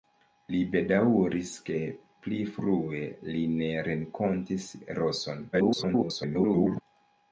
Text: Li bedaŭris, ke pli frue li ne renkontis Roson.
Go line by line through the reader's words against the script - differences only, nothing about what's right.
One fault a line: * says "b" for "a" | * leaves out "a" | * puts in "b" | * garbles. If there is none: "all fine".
* garbles